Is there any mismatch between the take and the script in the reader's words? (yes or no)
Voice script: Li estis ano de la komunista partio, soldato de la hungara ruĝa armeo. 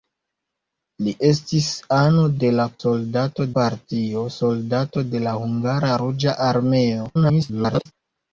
yes